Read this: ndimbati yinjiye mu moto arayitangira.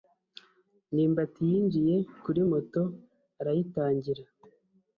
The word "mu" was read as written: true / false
false